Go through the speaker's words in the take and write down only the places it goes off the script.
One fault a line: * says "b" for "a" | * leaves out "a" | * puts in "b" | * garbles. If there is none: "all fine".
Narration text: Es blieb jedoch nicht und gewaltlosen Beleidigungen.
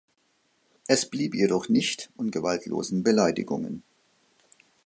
all fine